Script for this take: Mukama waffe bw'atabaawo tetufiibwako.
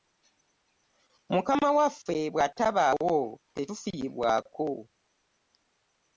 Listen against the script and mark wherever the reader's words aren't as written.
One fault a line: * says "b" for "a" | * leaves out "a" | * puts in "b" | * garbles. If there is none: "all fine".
all fine